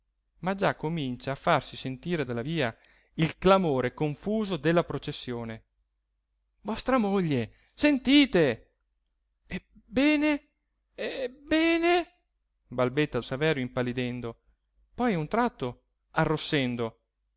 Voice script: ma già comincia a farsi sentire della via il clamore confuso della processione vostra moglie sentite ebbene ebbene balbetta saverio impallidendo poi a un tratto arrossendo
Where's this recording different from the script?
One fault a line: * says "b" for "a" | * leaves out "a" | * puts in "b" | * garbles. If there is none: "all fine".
all fine